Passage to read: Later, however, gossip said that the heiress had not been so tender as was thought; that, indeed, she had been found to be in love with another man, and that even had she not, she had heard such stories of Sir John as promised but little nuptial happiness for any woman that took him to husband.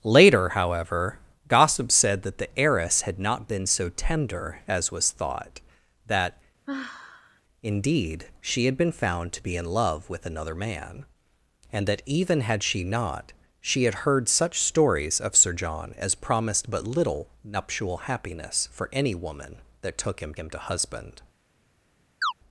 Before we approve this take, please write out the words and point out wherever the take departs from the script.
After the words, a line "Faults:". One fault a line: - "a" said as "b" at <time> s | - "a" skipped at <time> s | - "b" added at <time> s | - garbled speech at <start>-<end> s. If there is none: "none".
Later, however, gossip said that the heiress had not been so tender as was thought; that, indeed, she had been found to be in love with another man, and that even had she not, she had heard such stories of Sir John as promised but little nuptial happiness for any woman that took him him to husband.
Faults:
- "him" added at 20.4 s